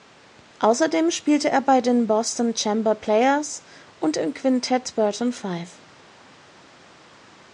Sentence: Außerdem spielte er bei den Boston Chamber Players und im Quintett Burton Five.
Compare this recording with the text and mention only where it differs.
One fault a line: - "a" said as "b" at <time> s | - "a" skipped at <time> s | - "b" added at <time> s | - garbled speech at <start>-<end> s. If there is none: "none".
none